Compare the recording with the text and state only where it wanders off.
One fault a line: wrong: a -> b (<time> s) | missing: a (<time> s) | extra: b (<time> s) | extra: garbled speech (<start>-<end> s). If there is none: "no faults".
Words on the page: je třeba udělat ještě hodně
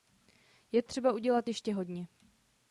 no faults